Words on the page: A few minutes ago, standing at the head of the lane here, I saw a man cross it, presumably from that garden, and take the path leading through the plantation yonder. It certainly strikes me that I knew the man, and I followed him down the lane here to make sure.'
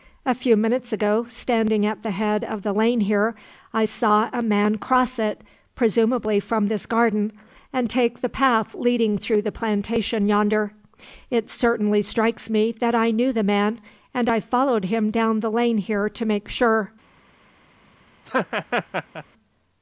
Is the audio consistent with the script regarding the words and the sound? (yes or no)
no